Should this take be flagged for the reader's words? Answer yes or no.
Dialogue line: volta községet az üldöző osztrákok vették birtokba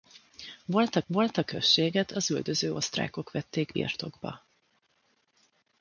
yes